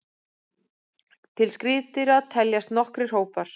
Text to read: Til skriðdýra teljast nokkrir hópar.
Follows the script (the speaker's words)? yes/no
yes